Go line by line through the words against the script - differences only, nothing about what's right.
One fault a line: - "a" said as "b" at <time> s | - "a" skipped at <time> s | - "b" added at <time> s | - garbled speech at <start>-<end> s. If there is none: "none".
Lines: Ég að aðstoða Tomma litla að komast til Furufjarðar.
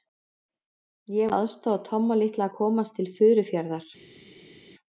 none